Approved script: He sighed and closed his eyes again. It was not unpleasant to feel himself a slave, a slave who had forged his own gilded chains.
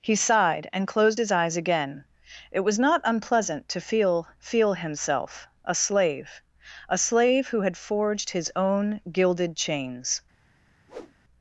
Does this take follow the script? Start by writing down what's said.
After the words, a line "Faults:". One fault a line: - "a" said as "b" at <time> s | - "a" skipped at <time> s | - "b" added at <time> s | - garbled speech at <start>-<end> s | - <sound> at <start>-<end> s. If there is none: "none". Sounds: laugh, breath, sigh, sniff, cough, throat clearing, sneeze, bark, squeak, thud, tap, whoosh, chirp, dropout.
He sighed and closed his eyes again. It was not unpleasant to feel feel himself a slave, a slave who had forged his own gilded chains.
Faults:
- "feel" added at 4.4 s
- whoosh at 10.9-11.1 s